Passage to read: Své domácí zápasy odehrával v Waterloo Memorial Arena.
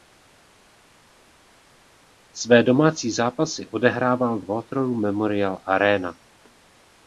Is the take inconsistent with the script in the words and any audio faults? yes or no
no